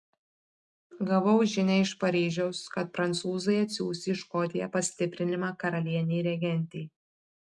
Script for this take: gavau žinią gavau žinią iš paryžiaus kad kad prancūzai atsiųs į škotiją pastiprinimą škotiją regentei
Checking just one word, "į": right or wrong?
right